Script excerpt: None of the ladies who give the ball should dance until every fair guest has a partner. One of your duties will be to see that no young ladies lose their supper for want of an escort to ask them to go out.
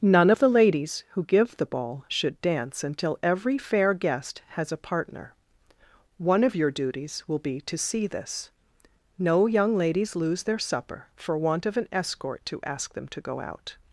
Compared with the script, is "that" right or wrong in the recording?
wrong